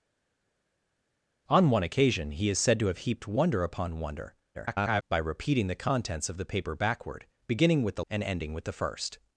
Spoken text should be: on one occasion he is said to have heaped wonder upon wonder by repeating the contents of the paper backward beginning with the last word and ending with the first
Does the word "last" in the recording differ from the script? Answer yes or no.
yes